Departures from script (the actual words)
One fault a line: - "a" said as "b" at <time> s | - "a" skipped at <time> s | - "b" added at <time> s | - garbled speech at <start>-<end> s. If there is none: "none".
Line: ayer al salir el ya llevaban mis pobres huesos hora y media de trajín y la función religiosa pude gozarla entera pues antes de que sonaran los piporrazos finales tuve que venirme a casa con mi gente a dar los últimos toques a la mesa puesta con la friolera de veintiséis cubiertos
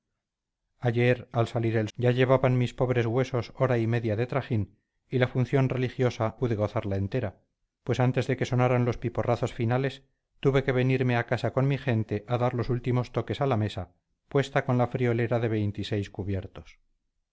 none